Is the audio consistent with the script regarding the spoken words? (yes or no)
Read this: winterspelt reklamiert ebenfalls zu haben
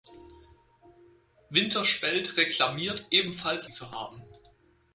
yes